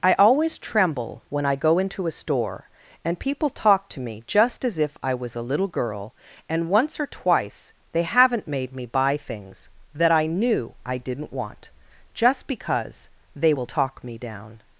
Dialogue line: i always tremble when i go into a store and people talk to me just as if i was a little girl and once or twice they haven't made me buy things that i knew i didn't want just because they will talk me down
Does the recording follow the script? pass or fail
pass